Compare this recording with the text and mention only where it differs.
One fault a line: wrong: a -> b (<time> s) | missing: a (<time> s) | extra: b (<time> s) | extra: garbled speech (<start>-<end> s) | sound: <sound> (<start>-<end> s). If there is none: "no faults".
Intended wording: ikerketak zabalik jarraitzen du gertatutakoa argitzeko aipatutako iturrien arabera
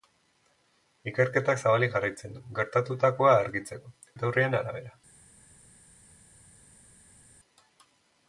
missing: aipatutako (3.9 s)